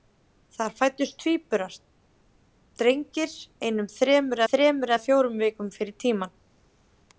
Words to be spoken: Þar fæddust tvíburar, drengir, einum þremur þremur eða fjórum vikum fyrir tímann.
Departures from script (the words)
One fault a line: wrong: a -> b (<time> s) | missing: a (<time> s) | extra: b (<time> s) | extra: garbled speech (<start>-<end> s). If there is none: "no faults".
no faults